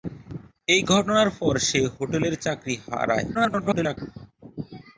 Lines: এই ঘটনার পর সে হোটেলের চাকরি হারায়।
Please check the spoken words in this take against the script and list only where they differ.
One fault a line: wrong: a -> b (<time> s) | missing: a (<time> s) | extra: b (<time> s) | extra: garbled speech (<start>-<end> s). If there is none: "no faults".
extra: garbled speech (3.3-4.0 s)